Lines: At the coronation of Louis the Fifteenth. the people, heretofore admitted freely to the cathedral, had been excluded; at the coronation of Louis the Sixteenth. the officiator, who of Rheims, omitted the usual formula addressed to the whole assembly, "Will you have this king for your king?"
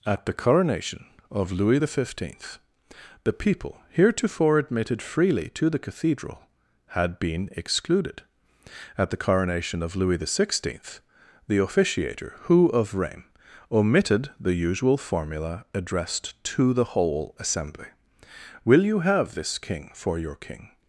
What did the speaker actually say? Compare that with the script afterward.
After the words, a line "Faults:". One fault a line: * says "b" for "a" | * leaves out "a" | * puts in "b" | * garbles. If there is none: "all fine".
At the coronation of Louis the Fifteenth. the people, heretofore admitted freely to the cathedral, had been excluded; at the coronation of Louis the Sixteenth. the officiator, who of Rheims, omitted the usual formula addressed to the whole assembly, "Will you have this king for your king?"
Faults:
all fine